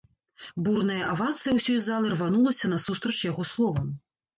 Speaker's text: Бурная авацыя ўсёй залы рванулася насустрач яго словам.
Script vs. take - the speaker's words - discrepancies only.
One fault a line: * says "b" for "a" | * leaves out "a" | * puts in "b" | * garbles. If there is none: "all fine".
all fine